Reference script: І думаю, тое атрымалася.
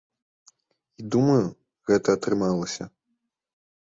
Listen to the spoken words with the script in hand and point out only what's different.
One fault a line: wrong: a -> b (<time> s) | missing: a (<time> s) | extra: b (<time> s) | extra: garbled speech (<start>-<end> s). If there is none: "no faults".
wrong: тое -> гэта (1.9 s)